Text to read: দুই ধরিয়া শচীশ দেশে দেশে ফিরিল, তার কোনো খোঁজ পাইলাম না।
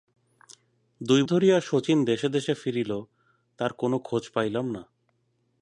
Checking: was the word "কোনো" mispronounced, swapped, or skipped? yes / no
no